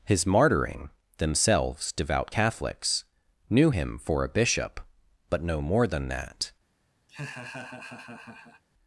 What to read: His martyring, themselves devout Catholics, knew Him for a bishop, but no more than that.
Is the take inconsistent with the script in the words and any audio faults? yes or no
yes